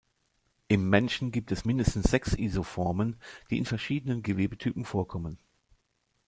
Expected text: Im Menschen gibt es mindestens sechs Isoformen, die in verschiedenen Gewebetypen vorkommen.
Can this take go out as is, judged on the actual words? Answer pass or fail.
pass